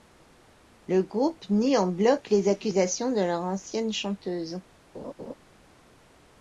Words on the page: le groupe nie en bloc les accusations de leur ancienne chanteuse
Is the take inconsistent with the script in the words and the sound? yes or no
yes